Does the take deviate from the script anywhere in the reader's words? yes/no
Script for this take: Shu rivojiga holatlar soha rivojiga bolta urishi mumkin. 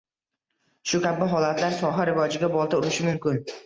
yes